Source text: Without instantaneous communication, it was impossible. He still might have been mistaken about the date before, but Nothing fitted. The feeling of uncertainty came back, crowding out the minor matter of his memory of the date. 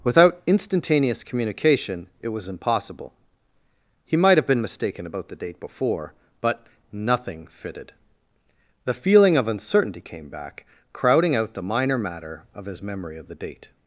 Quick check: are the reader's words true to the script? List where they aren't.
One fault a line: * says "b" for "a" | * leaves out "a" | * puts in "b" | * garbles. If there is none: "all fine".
* leaves out "still"